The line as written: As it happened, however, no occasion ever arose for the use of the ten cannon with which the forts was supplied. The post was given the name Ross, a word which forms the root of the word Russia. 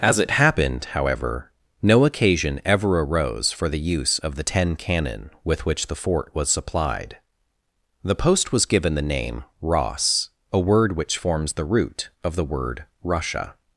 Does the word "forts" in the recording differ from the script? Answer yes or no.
yes